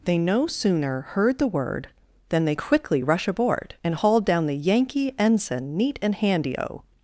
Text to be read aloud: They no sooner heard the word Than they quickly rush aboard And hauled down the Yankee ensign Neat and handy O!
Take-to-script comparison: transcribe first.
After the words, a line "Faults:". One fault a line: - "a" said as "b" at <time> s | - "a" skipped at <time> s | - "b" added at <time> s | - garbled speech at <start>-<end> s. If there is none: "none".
They no sooner heard the word Than they quickly rush aboard And hauled down the Yankee ensign Neat and handy O!
Faults:
none